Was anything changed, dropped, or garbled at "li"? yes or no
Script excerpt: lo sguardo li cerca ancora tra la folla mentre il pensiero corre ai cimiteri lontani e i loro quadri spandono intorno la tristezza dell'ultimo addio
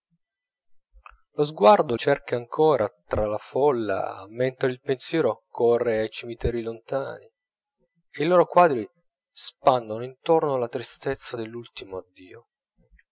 yes